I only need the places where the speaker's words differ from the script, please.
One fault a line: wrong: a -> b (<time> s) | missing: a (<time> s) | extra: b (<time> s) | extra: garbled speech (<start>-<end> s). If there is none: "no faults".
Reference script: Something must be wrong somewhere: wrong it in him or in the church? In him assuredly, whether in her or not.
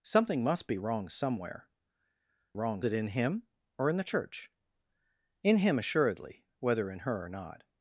no faults